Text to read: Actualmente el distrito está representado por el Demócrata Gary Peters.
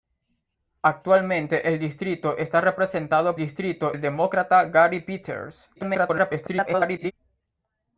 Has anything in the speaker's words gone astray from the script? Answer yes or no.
yes